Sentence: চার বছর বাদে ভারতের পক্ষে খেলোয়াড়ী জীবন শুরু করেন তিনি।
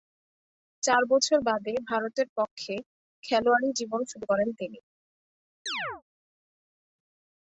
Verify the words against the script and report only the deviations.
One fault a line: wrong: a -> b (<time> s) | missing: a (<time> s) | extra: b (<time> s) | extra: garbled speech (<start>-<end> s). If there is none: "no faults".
no faults